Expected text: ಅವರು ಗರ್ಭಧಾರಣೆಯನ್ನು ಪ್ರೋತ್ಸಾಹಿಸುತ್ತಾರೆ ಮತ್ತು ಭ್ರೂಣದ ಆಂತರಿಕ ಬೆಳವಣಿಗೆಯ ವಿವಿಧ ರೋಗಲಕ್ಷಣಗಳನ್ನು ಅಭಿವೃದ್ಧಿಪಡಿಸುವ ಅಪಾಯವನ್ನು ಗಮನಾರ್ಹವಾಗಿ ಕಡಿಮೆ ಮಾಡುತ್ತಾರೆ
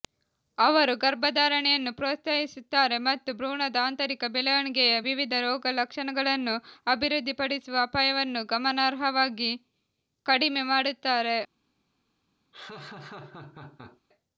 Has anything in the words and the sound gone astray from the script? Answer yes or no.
yes